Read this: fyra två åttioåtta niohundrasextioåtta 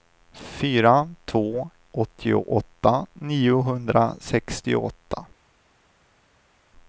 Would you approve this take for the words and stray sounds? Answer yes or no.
yes